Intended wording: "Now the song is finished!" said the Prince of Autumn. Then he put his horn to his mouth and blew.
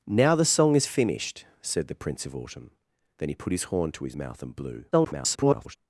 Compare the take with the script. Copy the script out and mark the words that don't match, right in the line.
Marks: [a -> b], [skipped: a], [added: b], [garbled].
"Now the song is finished!" said the Prince of Autumn. Then he put his horn to his mouth and blew. [garbled]